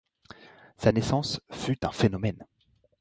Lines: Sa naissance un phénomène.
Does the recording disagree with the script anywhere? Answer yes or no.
yes